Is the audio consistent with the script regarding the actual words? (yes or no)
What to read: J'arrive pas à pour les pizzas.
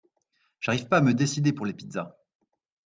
no